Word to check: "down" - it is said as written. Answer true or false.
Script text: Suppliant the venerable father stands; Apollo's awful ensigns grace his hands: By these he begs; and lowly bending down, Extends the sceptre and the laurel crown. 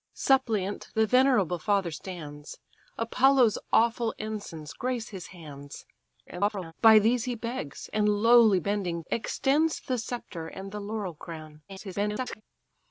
false